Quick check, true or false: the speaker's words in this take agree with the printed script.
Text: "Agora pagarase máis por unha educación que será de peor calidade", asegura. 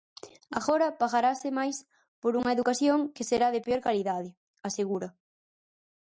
true